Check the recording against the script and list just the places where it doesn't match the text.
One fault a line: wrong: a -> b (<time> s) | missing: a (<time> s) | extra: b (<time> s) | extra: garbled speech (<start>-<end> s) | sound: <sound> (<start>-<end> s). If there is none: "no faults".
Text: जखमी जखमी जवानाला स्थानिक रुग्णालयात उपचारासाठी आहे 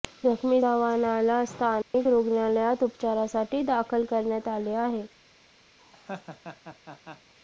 missing: जखमी (0.6 s)
sound: dropout (1.8-1.9 s)
extra: दाखल करण्यात आले (3.6 s)
sound: laugh (5.8-7.3 s)